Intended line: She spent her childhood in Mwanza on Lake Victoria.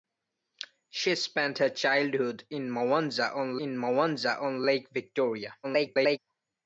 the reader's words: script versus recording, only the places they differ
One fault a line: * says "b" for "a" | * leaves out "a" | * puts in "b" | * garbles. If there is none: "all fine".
* puts in "in Mwanza on"
* garbles